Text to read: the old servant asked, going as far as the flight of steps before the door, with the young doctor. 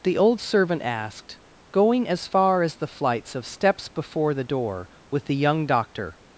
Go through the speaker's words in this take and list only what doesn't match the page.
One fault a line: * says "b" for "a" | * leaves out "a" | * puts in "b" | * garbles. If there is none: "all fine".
* says "flights" for "flight"